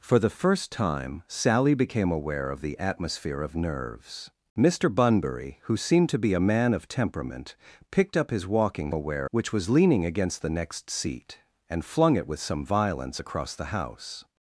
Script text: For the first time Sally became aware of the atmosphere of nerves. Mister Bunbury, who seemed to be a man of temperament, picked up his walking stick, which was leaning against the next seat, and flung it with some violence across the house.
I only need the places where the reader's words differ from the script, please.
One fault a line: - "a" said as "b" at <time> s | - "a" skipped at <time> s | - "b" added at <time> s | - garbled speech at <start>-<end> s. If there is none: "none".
- "stick" said as "aware" at 8.9 s